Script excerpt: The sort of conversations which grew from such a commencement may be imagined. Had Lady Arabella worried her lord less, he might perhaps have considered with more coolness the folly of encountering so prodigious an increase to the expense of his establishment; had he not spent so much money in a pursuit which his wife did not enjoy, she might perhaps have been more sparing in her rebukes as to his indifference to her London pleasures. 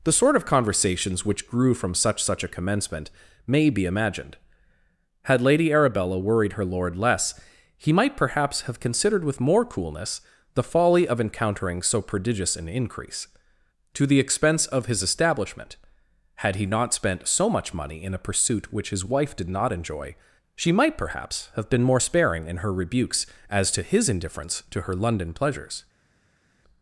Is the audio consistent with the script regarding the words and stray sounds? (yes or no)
no